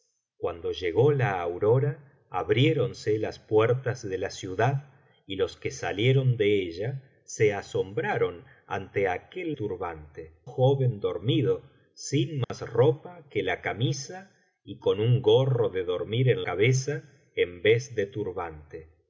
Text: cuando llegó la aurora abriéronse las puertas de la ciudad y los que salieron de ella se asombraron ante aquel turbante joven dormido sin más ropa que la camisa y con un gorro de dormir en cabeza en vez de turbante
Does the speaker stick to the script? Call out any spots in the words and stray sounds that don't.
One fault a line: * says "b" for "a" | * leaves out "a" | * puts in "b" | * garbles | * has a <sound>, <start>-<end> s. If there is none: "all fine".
* has a dropout, 12.4-12.5 s